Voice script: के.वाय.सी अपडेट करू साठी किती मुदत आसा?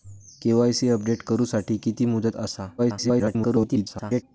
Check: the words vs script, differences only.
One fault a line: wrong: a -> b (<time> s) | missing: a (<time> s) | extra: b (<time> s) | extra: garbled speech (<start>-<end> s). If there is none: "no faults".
extra: garbled speech (2.8-4.2 s)